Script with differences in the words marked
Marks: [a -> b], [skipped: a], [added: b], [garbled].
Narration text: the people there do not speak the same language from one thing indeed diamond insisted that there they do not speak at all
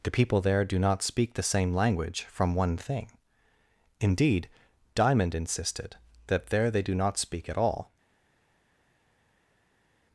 the people there do not speak the same language from one thing indeed diamond insisted that there they do not speak at all